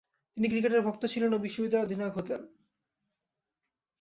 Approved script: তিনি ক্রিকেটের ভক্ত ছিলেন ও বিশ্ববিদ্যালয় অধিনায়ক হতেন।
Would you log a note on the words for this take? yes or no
no